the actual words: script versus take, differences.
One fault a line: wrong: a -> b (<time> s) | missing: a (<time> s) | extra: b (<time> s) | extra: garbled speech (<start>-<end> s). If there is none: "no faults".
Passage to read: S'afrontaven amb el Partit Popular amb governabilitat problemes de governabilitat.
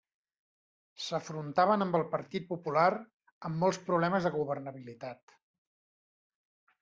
wrong: governabilitat -> molts (3.6 s)